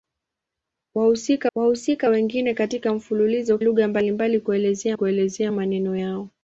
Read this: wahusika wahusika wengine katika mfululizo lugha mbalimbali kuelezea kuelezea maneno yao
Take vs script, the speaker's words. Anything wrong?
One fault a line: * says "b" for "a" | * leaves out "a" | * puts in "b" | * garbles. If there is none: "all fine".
all fine